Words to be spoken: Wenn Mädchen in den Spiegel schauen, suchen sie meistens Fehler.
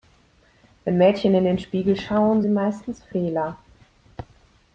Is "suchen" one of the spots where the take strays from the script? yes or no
yes